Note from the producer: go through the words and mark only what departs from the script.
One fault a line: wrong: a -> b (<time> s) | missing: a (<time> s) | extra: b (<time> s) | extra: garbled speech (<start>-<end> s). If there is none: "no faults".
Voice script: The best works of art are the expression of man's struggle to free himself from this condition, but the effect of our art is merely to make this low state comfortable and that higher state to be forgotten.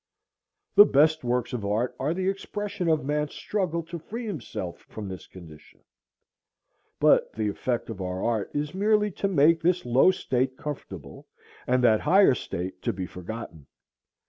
no faults